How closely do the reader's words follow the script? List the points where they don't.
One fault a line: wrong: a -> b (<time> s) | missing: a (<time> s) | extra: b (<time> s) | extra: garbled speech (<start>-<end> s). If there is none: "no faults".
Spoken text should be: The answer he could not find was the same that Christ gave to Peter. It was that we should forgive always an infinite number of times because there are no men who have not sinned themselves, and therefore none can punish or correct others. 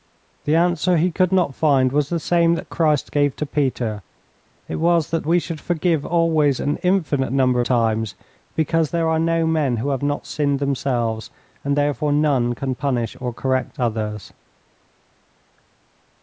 missing: of (7.6 s)